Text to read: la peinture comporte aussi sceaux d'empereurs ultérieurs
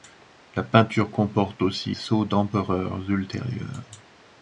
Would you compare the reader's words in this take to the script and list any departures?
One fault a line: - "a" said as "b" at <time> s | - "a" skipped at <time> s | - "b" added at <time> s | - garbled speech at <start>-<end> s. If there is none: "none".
none